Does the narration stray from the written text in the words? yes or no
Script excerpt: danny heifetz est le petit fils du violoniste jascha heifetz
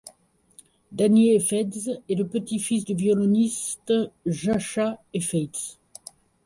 no